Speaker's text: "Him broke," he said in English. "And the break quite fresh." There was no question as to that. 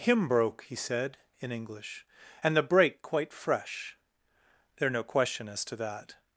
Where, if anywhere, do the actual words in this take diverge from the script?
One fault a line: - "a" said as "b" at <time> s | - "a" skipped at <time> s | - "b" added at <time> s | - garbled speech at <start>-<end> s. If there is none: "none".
- "was" skipped at 4.9 s